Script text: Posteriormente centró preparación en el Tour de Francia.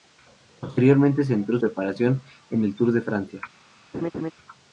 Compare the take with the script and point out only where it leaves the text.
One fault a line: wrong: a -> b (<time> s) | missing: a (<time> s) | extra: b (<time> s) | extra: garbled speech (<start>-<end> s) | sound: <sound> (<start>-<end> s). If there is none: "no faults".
sound: laugh (3.9-4.3 s)